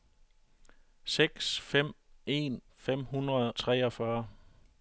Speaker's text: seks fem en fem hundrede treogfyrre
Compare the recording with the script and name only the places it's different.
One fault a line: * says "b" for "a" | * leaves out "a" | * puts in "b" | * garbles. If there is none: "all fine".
all fine